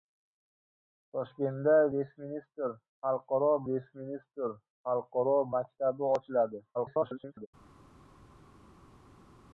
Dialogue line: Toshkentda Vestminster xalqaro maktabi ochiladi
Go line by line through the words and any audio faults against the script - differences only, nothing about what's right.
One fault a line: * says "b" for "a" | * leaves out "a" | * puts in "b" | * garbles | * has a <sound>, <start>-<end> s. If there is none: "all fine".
* puts in "Vestminster xalqaro"
* garbles